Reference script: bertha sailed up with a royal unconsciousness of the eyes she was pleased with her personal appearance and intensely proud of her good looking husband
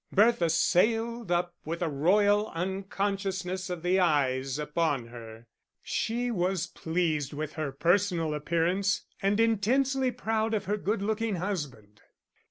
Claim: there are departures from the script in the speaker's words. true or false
true